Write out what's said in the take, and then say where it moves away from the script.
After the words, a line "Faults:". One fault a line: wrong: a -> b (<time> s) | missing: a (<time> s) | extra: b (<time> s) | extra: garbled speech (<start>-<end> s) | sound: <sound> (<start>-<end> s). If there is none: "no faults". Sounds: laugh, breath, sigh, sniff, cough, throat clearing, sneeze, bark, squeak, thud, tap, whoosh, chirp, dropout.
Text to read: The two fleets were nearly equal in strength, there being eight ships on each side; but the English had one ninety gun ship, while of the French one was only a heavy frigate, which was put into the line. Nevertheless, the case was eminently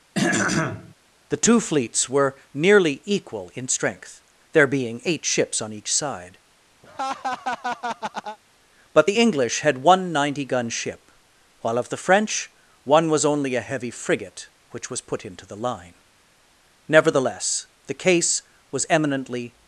The two fleets were nearly equal in strength, there being eight ships on each side; but the English had one ninety gun ship, while of the French one was only a heavy frigate, which was put into the line. Nevertheless, the case was eminently
Faults:
sound: throat clearing (0.1-0.9 s)
sound: laugh (6.8-8.4 s)